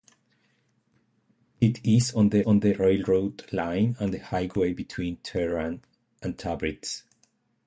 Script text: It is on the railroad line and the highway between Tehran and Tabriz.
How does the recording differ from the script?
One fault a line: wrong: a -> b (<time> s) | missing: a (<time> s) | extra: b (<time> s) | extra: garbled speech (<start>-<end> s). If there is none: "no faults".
extra: on the (2.5 s)